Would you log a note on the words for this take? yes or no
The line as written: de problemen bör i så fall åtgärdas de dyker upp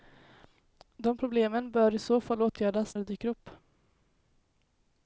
no